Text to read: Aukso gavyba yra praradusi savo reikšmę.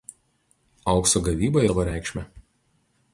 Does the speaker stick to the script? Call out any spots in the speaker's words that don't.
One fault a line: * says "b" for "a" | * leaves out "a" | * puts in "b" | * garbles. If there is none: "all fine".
* leaves out "yra praradusi"